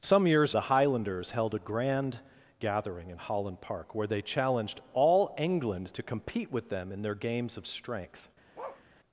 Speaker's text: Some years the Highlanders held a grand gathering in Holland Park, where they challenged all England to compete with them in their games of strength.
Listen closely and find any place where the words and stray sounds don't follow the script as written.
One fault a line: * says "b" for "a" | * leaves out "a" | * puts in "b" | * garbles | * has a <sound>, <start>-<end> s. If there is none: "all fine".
* has a bark, 8.5-8.8 s